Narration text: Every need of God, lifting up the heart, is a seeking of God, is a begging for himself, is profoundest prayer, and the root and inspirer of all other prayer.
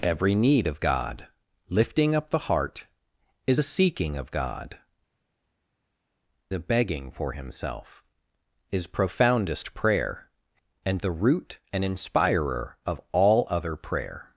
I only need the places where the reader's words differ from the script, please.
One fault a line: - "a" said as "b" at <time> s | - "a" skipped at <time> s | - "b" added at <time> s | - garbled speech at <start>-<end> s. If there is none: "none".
- "is" skipped at 4.8 s